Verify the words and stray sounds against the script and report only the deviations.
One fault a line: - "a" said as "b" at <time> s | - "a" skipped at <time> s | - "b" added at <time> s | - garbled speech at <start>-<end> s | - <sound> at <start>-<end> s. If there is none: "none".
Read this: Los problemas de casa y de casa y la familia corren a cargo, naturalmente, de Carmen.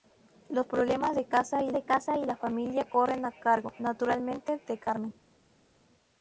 none